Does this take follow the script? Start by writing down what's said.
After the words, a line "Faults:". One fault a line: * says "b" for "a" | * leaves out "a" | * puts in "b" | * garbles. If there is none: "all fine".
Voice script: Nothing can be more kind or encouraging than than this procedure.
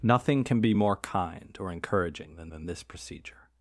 Nothing can be more kind or encouraging than than this procedure.
Faults:
all fine